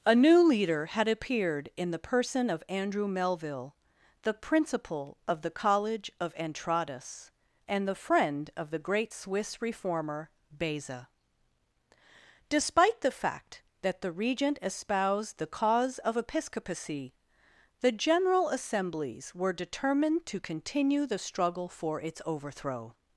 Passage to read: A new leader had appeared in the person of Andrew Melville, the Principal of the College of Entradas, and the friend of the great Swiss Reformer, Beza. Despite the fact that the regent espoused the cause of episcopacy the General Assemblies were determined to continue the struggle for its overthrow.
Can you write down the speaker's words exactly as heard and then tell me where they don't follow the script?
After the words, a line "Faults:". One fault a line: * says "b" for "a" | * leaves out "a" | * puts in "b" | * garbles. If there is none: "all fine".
A new leader had appeared in the person of Andrew Melville, the Principal of the College of Entradas, and the friend of the great Swiss Reformer, Beza. Despite the fact that the regent espoused the cause of episcopacy the General Assemblies were determined to continue the struggle for its overthrow.
Faults:
all fine